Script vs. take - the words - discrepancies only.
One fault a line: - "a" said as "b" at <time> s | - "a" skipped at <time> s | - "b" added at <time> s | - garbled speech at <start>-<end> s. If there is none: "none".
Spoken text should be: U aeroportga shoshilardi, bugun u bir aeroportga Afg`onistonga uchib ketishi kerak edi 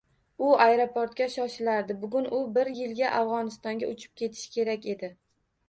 - "aeroportga" said as "yilga" at 2.8 s